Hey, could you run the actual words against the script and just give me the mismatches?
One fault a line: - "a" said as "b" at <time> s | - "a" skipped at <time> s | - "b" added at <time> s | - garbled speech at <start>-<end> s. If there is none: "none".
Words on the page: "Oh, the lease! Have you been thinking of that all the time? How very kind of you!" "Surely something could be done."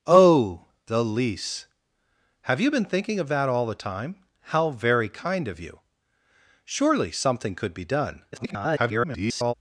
- garbled speech at 8.3-9.5 s